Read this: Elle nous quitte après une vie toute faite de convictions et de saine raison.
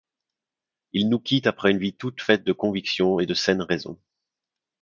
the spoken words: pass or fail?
fail